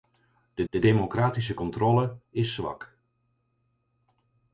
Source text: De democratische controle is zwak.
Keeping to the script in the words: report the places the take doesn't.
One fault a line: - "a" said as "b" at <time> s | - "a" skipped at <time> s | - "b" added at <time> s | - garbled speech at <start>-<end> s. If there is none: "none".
- "de" added at 0.7 s